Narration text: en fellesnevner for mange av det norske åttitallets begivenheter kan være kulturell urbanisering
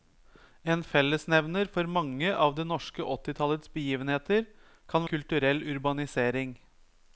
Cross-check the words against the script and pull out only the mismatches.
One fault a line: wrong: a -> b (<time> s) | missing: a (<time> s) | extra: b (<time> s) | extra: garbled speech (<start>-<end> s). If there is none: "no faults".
missing: være (5.1 s)